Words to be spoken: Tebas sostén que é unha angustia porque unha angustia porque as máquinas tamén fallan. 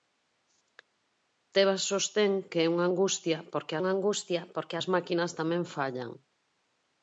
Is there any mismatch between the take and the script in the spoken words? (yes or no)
no